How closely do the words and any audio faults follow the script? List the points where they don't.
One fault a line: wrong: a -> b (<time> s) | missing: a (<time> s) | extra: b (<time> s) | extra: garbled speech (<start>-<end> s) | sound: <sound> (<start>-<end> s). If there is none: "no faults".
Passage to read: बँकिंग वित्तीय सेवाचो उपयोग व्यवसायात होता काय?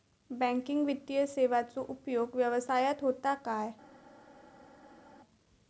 no faults